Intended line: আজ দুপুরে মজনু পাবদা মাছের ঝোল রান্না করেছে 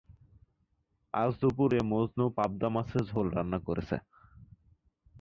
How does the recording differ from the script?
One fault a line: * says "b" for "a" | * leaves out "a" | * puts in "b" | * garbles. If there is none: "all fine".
all fine